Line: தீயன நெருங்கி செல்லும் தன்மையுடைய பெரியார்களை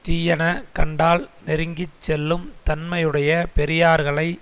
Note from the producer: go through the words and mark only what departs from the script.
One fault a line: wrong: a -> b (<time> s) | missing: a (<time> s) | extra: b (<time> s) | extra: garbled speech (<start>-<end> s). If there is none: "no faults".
extra: கண்டால் (0.7 s)